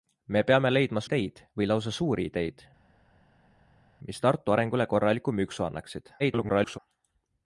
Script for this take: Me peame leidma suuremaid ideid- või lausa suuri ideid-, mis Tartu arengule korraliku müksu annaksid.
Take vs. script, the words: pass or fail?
fail